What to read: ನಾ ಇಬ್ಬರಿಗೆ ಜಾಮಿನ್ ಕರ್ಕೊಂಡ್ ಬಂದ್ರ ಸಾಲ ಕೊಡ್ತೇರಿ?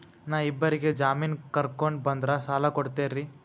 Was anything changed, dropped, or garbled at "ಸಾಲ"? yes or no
no